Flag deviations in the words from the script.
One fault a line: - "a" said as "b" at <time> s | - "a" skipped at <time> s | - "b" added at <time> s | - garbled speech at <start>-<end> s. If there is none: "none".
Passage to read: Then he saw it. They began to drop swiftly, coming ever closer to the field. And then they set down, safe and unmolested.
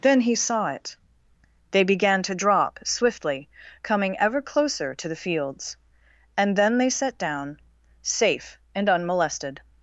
- "field" said as "fields" at 5.1 s